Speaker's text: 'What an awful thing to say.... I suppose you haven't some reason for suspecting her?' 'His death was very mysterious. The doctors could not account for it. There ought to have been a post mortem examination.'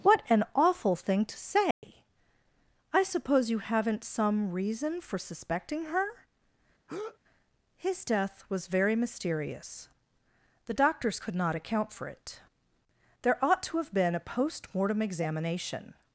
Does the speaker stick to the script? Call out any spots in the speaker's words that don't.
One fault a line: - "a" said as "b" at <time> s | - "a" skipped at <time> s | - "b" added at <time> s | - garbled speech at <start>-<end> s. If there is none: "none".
none